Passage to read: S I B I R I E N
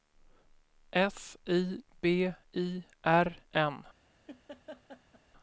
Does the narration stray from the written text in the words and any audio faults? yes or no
yes